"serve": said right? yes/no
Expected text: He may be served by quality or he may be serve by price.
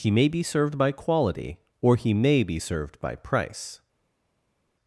no